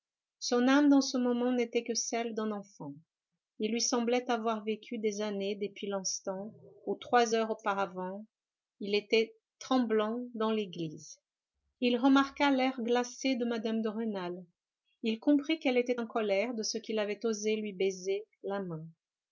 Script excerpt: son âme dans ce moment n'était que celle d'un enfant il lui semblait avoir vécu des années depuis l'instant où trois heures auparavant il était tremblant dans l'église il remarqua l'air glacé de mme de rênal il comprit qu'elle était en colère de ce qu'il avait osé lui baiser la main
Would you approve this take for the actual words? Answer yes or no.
yes